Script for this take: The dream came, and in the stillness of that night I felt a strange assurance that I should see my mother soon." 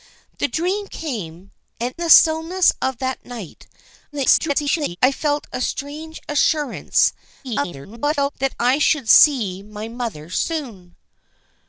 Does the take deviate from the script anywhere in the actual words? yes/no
yes